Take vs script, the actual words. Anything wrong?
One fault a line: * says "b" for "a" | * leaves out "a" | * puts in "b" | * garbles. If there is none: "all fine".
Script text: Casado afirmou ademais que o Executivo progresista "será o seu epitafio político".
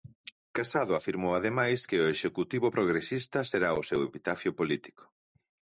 all fine